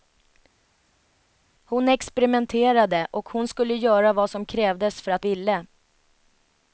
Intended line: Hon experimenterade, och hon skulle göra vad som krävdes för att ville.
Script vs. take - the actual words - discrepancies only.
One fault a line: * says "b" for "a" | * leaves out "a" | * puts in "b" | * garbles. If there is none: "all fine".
all fine